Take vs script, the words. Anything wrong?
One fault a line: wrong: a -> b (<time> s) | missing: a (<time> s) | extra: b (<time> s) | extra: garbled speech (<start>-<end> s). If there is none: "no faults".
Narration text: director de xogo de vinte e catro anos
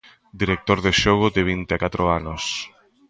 no faults